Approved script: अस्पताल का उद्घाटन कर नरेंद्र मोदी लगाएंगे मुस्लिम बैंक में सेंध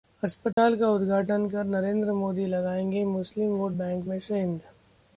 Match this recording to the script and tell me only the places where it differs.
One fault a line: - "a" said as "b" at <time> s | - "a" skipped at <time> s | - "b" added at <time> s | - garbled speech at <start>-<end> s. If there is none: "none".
- "वोट" added at 3.5 s